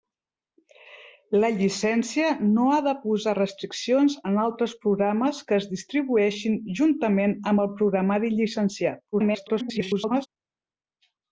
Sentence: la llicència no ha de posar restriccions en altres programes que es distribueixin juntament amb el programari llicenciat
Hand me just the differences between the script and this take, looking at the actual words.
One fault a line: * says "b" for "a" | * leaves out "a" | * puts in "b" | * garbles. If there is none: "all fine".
* garbles